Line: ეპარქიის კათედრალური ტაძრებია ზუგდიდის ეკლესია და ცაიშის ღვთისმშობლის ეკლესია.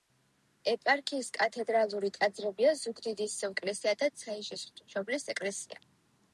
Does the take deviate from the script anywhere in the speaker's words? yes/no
no